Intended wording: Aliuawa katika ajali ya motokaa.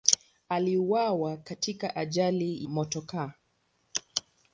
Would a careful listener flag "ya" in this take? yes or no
yes